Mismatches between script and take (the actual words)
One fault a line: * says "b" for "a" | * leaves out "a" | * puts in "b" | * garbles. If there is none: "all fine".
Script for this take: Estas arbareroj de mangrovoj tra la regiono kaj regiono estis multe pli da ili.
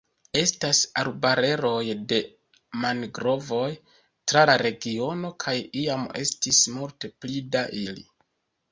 * says "iam" for "regiono"